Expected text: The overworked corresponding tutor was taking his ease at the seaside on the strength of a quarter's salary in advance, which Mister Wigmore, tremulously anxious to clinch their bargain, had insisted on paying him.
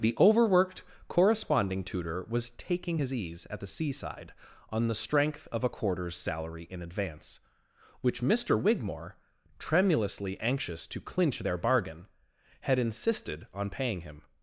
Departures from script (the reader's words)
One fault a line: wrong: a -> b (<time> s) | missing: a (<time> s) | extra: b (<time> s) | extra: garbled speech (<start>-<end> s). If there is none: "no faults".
no faults